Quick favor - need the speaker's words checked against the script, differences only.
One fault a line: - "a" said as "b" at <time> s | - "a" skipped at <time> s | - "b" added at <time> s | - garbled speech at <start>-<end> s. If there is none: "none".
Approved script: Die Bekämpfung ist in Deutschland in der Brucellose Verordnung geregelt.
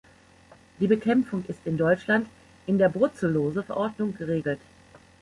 none